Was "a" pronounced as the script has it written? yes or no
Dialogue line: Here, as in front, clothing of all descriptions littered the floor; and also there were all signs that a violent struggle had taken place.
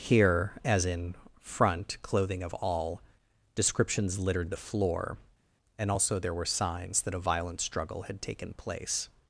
yes